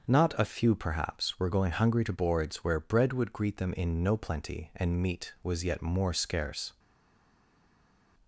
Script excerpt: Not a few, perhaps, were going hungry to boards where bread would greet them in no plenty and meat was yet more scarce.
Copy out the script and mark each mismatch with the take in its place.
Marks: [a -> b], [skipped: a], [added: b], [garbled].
Not a few, perhaps, were going hungry to boards where bread would greet them in no plenty and meat was yet more scarce.